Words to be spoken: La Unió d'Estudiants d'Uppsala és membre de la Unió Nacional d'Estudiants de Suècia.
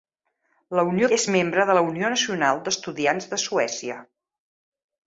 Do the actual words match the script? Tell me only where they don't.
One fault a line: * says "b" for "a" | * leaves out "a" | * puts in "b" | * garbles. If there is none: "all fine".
* leaves out "d'Estudiants d'Uppsala"